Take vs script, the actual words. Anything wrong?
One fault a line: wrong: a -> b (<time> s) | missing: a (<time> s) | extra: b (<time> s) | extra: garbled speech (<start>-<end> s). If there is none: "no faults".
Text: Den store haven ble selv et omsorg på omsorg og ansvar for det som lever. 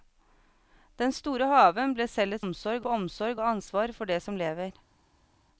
no faults